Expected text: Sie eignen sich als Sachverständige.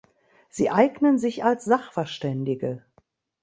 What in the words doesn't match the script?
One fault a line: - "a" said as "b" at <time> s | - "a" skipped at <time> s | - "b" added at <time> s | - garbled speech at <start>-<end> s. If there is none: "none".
none